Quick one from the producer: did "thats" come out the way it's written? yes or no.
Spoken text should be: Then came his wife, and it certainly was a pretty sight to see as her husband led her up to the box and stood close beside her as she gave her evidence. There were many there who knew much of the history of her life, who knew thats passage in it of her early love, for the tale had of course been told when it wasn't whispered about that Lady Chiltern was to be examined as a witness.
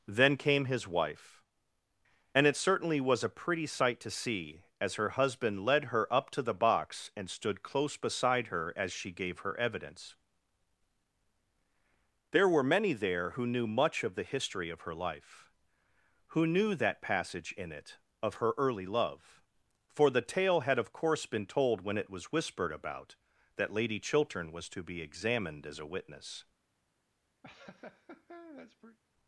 no